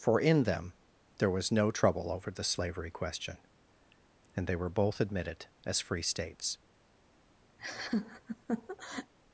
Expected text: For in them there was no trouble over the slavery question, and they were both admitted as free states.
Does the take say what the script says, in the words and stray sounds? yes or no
no